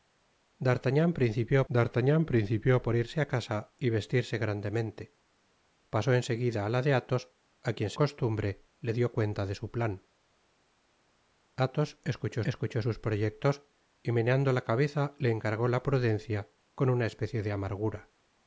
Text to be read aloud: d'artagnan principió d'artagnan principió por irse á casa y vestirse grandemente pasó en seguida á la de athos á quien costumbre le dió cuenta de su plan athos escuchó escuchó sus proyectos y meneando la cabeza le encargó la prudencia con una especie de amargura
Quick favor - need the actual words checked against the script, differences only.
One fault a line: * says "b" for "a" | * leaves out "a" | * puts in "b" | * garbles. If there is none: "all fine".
all fine